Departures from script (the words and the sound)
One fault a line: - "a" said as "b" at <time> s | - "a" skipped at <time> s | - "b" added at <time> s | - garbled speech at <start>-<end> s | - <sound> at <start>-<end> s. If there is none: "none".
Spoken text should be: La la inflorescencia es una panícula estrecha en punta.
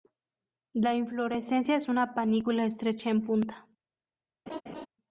- "la" skipped at 0.9 s
- laugh at 4.5-4.9 s